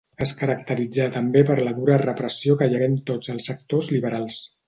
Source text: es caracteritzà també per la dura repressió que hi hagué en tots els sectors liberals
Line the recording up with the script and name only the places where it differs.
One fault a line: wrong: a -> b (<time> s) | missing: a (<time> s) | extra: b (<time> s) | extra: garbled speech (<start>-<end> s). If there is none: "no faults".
no faults